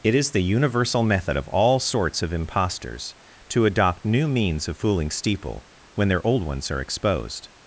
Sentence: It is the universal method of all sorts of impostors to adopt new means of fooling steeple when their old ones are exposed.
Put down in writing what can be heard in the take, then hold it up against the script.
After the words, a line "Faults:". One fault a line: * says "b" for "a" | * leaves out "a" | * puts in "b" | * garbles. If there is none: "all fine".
It is the universal method of all sorts of impostors to adopt new means of fooling steeple when their old ones are exposed.
Faults:
all fine